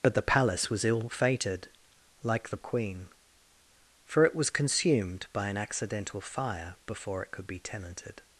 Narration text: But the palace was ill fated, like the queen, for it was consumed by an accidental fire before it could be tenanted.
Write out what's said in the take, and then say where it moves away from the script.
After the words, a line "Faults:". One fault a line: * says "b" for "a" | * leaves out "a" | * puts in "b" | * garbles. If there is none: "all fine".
But the palace was ill fated, like the queen, for it was consumed by an accidental fire before it could be tenanted.
Faults:
all fine